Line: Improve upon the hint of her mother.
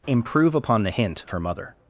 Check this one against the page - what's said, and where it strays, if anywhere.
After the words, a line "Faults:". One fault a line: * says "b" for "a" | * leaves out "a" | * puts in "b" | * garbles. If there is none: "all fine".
Improve upon the hint her mother.
Faults:
* leaves out "of"